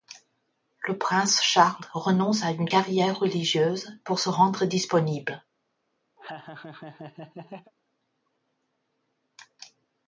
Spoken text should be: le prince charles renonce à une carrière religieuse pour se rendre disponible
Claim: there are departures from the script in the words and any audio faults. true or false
true